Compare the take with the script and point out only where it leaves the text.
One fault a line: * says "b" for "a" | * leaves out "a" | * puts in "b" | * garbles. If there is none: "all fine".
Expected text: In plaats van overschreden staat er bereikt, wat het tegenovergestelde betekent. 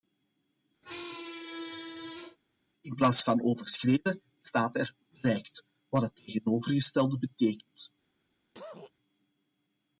all fine